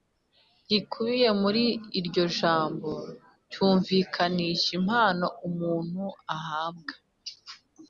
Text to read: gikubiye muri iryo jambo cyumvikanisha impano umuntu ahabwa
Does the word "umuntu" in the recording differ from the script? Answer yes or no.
no